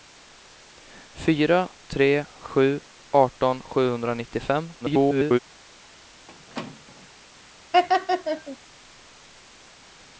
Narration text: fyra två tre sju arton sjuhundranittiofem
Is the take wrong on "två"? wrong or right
wrong